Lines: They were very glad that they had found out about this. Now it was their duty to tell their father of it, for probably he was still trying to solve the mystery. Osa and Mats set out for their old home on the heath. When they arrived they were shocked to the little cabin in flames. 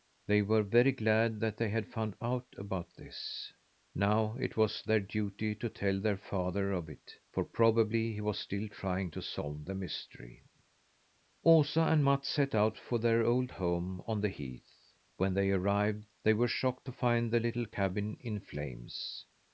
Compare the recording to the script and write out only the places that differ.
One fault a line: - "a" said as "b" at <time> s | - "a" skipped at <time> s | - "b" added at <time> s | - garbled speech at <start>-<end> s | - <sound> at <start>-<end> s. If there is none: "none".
- "find" added at 16.9 s